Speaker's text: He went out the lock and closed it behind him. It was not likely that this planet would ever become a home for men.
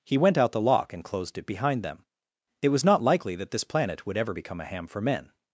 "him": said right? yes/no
no